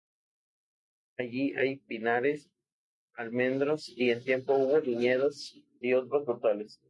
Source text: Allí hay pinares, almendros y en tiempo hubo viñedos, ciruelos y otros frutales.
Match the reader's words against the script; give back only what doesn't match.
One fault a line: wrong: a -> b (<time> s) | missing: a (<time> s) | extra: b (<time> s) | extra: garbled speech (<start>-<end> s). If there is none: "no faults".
missing: ciruelos (5.6 s)